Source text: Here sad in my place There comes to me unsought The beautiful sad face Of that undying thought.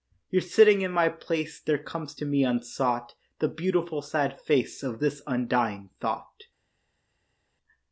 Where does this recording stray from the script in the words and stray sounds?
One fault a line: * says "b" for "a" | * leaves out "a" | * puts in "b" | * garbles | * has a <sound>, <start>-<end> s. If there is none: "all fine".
* says "sitting" for "sad"
* says "this" for "that"